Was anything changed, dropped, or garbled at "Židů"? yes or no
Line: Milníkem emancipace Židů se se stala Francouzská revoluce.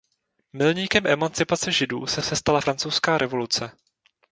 no